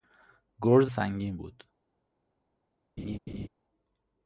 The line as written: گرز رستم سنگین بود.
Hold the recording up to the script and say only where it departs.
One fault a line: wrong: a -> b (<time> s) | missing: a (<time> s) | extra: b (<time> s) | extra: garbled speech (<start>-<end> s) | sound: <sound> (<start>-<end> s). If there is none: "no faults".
missing: رستم (0.9 s)
sound: laugh (3.0-3.5 s)